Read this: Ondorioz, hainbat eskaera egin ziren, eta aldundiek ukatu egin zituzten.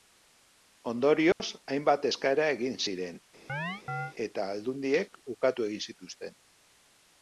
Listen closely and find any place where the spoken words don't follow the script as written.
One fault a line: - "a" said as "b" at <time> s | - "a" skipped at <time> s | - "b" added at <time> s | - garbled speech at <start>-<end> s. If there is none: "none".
none